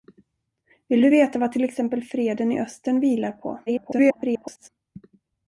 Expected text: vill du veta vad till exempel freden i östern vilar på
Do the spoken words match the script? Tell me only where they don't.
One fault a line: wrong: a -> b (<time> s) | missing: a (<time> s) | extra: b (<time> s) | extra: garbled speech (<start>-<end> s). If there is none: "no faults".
extra: garbled speech (3.7-4.7 s)